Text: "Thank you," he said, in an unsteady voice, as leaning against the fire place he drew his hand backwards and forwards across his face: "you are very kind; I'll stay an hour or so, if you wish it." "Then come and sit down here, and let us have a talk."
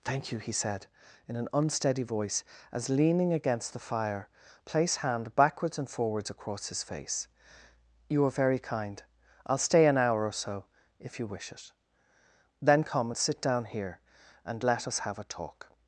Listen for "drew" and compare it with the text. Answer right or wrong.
wrong